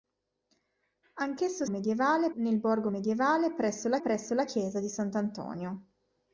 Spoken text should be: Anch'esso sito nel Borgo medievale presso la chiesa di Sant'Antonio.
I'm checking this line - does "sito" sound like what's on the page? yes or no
no